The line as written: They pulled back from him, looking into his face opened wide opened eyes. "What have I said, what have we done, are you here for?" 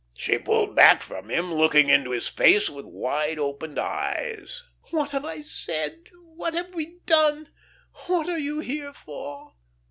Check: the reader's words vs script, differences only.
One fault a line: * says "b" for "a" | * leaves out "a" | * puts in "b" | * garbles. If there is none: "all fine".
* says "She" for "They"
* says "with" for "opened"
* puts in "what"